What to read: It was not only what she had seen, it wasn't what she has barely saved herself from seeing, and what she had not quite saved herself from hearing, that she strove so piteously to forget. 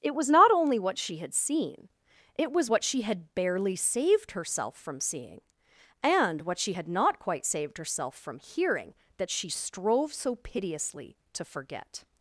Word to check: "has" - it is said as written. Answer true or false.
false